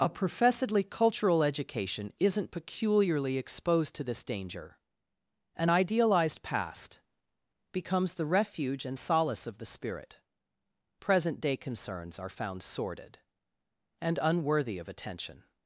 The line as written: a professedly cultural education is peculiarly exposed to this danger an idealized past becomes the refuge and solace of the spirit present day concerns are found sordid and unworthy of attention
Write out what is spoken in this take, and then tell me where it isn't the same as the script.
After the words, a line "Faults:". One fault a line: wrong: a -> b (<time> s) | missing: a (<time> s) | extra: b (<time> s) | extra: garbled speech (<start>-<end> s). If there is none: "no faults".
a professedly cultural education isn't peculiarly exposed to this danger an idealized past becomes the refuge and solace of the spirit present day concerns are found sordid and unworthy of attention
Faults:
wrong: is -> isn't (2.2 s)